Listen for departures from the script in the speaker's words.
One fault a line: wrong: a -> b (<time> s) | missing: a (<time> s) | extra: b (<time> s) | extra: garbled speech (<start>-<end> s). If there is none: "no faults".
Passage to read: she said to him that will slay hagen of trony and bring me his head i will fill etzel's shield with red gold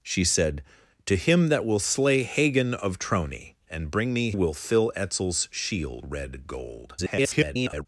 missing: his head i (4.3 s)
missing: with (6.1 s)
extra: garbled speech (7.0-7.9 s)